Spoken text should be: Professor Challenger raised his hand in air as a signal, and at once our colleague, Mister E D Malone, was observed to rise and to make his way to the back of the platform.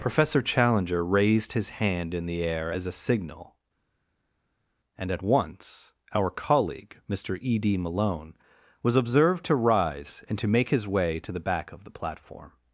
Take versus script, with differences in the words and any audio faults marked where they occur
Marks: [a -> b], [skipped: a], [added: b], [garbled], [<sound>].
Professor Challenger raised his hand in [added: the] air as a signal, and at once our colleague, Mister E D Malone, was observed to rise and to make his way to the back of the platform.